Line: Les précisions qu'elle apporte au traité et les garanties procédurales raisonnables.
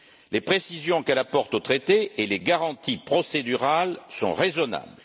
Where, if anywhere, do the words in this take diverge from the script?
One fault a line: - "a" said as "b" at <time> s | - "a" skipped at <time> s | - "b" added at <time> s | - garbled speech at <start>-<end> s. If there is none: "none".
- "sont" added at 4.1 s